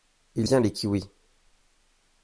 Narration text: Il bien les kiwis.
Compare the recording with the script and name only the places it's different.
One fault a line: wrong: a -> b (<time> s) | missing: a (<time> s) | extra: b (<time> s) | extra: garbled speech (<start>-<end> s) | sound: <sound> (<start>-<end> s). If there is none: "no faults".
no faults